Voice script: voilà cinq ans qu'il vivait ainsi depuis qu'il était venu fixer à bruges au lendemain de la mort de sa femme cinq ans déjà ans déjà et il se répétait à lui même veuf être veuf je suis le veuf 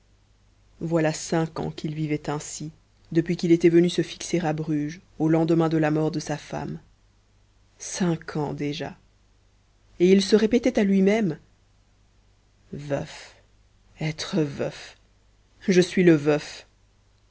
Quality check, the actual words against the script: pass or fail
fail